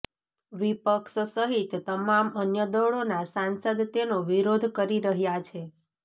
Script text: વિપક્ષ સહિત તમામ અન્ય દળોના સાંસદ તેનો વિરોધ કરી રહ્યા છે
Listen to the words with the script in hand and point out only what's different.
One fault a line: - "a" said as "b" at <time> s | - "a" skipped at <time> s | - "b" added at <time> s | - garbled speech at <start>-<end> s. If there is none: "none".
none